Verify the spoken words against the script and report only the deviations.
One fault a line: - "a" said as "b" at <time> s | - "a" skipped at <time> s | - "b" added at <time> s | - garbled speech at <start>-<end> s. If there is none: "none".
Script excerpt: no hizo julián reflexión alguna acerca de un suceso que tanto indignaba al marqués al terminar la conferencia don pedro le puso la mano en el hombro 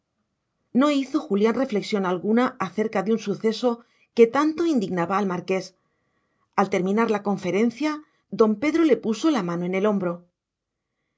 none